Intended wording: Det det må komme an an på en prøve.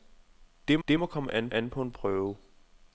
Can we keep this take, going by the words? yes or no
yes